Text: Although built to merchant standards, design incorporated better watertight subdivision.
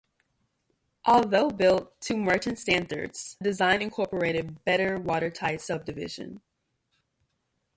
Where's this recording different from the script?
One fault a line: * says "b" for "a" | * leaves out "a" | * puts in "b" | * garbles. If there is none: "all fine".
all fine